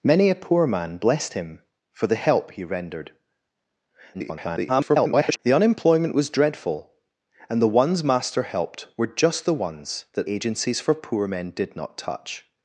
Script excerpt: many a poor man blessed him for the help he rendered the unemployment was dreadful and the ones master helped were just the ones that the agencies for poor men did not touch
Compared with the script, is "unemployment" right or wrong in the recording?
right